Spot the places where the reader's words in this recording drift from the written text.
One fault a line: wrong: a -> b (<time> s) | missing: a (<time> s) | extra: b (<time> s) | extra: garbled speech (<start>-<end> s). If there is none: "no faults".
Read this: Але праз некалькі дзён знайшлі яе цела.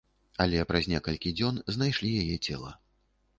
no faults